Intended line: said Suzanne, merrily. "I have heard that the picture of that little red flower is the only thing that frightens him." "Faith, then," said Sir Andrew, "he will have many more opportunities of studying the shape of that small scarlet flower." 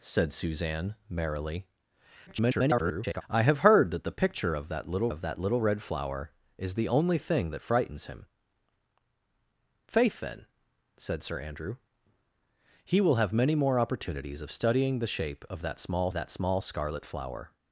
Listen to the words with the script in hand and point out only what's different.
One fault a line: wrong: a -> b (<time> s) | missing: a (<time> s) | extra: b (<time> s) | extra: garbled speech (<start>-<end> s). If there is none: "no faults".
extra: garbled speech (2.3-3.2 s)
extra: of that little (5.1 s)
extra: that small (16.1 s)